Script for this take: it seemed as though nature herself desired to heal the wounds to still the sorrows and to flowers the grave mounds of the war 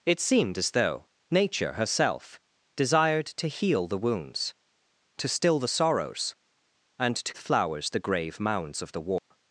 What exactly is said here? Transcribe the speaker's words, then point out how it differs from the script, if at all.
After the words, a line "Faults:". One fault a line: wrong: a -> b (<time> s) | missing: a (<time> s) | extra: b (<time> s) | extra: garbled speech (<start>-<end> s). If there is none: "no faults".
it seemed as though nature herself desired to heal the wounds to still the sorrows and to flowers the grave mounds of the war
Faults:
no faults